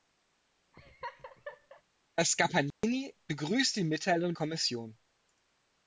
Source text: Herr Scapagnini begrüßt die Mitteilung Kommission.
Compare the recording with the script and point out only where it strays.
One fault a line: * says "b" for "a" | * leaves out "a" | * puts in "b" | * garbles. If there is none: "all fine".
all fine